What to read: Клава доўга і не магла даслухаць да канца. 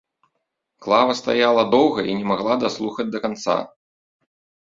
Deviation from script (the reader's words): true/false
true